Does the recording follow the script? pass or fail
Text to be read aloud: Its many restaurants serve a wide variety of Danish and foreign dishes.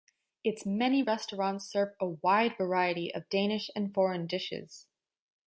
pass